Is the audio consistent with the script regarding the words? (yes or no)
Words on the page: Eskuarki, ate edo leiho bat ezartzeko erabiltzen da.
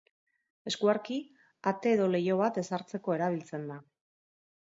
yes